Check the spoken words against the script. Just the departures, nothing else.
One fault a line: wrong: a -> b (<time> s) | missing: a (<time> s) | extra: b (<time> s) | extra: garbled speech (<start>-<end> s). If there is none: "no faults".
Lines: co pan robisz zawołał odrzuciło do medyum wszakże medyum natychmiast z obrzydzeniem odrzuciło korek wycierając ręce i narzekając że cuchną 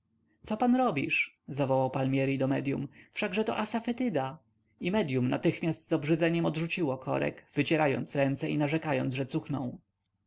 wrong: odrzuciło -> palmieri (1.9 s)
extra: to asafetyda i (3.4 s)